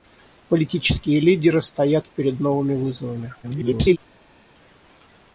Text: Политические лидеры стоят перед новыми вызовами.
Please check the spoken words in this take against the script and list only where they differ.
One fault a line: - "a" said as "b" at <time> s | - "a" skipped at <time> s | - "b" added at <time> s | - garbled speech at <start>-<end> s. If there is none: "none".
- garbled speech at 3.4-4.0 s